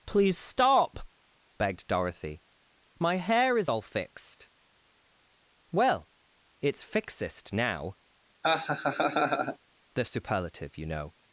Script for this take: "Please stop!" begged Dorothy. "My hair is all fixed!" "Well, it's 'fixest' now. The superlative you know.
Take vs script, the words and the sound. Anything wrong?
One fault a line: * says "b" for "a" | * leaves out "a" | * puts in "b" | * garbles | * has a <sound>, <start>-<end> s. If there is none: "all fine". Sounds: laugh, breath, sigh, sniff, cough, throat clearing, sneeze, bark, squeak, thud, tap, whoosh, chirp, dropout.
* has a laugh, 8.4-9.6 s